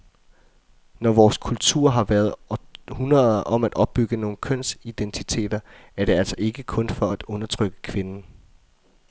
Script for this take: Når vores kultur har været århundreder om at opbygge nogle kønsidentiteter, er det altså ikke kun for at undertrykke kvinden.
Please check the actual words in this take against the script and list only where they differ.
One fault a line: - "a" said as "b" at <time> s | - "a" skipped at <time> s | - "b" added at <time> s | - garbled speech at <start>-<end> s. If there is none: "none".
none